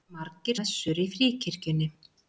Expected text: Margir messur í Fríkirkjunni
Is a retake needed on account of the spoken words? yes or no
no